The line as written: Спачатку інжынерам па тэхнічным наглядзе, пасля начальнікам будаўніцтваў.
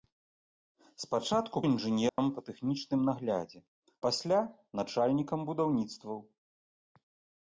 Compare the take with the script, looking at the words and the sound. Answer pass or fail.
fail